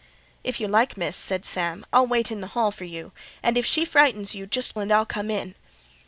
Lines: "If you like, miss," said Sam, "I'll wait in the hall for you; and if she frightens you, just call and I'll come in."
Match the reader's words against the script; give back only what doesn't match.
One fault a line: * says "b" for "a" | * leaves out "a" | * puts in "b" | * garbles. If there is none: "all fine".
* leaves out "call"